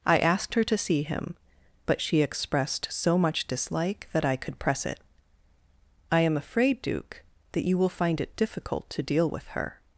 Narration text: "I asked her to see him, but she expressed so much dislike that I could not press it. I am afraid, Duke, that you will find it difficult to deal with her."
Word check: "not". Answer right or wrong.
wrong